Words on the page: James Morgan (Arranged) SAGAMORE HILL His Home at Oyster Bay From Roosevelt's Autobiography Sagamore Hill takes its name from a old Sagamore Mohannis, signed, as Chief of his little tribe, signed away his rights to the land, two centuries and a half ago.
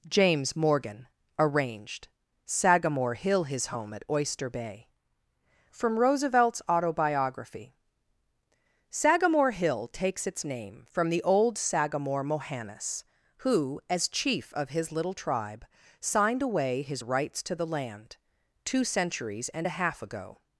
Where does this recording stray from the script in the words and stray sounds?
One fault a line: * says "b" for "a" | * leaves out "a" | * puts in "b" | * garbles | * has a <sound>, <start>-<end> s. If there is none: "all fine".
* says "the" for "a"
* says "who" for "signed"